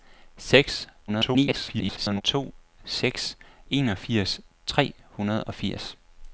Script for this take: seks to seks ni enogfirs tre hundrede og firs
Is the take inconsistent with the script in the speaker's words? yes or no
yes